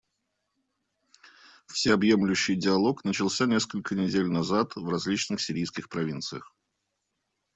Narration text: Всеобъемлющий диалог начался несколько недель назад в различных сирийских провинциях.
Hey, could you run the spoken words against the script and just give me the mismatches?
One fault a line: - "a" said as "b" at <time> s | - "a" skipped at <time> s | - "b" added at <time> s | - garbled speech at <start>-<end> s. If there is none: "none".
none